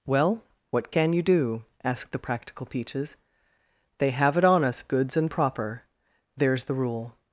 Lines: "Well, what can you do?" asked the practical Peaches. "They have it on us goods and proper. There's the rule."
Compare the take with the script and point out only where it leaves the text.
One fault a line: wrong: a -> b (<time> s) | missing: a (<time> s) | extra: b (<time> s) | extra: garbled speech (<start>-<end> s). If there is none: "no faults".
no faults